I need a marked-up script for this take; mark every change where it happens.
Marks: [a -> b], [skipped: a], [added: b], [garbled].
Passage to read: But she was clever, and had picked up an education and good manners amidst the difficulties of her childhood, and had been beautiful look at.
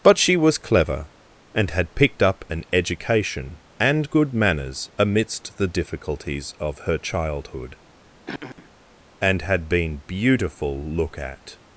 But she was clever, and had picked up an education and good manners amidst the difficulties of her childhood, and had been beautiful look at.